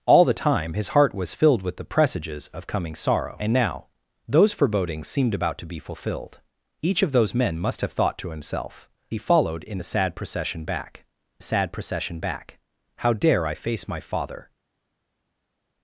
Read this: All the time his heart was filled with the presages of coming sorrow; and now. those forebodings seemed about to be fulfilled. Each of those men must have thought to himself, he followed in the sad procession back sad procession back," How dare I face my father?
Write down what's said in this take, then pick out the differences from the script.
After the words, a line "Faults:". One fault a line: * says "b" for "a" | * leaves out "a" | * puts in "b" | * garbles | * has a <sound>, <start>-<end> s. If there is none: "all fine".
All the time his heart was filled with the presages of coming sorrow; and now. those forebodings seemed about to be fulfilled. Each of those men must have thought to himself, he followed in the sad procession back sad procession back," How dare I face my father?
Faults:
all fine